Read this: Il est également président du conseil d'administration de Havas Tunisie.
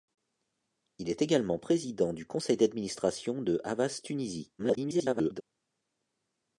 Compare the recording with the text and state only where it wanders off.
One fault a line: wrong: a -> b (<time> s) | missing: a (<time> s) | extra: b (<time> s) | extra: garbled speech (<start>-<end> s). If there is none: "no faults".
extra: garbled speech (4.6-5.4 s)